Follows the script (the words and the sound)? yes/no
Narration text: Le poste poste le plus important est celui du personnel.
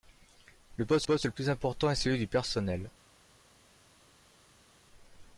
yes